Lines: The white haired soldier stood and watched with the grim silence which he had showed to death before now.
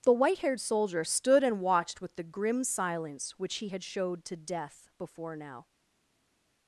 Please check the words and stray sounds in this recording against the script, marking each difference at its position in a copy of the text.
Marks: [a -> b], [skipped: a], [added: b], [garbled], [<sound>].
The white haired soldier stood and watched with the grim silence which he had showed to death before now.